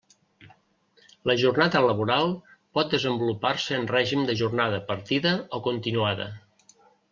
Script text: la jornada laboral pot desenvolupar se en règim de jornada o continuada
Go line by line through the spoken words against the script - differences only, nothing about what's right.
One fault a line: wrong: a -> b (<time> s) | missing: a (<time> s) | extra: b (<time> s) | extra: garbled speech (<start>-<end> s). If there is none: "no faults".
extra: partida (4.9 s)